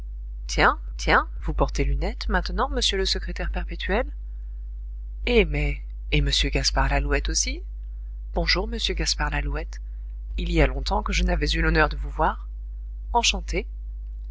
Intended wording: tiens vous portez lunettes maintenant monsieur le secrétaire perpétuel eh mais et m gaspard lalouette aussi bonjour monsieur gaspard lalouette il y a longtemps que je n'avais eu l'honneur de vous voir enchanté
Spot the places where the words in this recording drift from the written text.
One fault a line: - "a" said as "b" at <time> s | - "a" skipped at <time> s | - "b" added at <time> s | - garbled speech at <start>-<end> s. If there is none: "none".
- "tiens" added at 1.0 s